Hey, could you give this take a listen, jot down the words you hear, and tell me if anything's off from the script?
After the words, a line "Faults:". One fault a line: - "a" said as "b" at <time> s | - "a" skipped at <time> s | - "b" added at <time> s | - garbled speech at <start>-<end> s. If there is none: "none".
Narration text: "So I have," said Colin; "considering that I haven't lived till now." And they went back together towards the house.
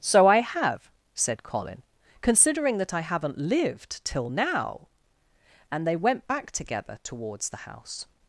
"So I have," said Colin; "considering that I haven't lived till now." And they went back together towards the house.
Faults:
none